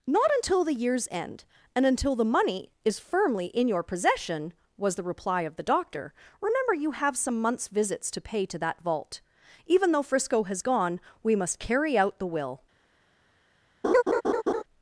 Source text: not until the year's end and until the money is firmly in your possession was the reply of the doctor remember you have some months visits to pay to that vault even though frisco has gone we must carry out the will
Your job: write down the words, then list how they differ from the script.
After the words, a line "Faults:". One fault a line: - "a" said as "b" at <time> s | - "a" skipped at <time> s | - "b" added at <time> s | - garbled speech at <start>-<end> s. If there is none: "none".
not until the year's end and until the money is firmly in your possession was the reply of the doctor remember you have some months visits to pay to that vault even though frisco has gone we must carry out the will
Faults:
none